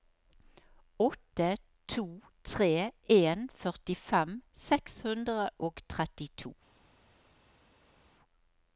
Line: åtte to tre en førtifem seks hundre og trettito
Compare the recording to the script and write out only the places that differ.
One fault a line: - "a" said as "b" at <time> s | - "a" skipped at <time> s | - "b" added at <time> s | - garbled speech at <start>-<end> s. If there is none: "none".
none